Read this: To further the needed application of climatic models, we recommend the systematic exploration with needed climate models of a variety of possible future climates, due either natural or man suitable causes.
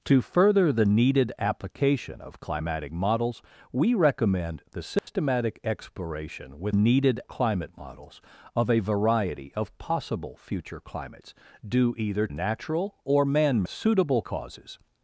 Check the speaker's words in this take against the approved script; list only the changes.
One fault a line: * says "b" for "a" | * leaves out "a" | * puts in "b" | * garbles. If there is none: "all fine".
all fine